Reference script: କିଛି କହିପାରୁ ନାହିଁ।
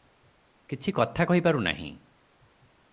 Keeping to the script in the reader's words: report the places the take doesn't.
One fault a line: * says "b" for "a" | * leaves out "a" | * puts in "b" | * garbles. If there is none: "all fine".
* puts in "କଥା"